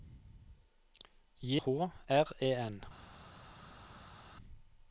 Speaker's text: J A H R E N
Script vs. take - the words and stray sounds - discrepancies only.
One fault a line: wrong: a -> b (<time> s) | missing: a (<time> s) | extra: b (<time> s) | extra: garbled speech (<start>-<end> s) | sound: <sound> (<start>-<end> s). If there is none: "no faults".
missing: A (1.6 s)